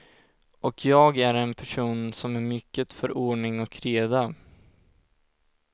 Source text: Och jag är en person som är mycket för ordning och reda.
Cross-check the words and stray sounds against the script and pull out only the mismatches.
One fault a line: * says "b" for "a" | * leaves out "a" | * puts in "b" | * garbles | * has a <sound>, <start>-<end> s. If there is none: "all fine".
all fine